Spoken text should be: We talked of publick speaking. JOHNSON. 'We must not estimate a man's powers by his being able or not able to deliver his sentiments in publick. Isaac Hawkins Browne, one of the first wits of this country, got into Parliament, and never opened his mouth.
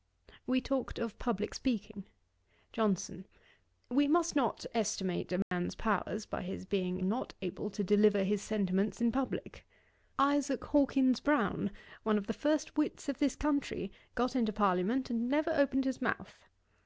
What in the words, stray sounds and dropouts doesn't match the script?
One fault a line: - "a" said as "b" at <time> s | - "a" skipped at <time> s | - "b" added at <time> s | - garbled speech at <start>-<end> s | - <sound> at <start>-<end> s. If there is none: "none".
- dropout at 5.4-5.5 s
- "able or" skipped at 7.0 s